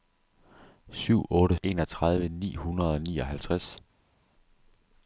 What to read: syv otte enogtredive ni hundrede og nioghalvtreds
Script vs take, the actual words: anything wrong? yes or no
no